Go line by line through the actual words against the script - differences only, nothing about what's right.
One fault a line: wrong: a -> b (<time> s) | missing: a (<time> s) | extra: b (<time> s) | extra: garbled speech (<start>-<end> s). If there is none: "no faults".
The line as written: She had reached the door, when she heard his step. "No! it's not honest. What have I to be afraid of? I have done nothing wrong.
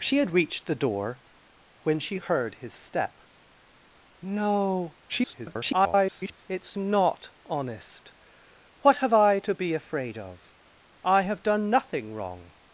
extra: garbled speech (5.1-6.5 s)